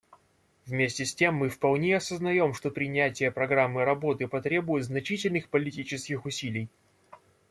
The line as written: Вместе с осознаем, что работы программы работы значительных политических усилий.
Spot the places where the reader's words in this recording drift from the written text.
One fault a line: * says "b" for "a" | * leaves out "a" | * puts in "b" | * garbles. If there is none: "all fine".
* puts in "тем мы вполне"
* says "принятие" for "работы"
* puts in "потребует"